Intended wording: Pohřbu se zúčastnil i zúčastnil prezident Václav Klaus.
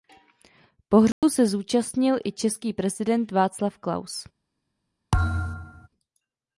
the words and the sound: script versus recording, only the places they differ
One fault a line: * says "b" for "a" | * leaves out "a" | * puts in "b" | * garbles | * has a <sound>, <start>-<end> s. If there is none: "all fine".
* has a dropout, 1.1-1.2 s
* says "český" for "zúčastnil"
* has a thud, 5.1-5.9 s